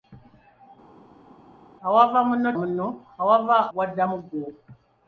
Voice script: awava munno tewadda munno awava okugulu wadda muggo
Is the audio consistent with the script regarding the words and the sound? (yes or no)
no